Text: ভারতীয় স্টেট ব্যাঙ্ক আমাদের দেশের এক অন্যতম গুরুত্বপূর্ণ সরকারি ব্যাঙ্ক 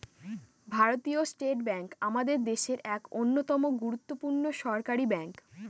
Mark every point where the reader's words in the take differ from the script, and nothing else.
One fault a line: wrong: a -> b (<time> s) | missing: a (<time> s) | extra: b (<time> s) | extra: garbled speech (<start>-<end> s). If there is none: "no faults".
no faults